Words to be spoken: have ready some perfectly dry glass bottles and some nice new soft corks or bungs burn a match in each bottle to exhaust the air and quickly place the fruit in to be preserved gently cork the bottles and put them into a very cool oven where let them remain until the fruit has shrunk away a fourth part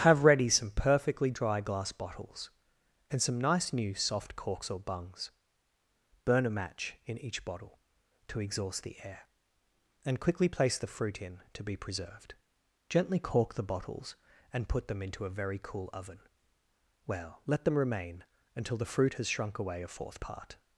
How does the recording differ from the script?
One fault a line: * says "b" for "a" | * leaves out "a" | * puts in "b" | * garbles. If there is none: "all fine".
* says "well" for "where"